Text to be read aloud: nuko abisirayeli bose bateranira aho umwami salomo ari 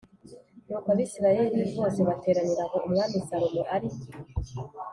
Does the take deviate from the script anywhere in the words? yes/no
no